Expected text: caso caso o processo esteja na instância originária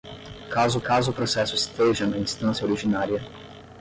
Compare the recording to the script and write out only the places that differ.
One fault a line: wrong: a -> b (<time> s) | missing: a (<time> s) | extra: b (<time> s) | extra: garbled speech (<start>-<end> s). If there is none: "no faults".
no faults